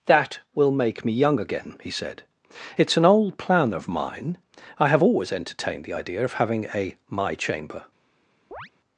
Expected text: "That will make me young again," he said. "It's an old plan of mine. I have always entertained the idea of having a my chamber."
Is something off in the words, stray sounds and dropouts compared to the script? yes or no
yes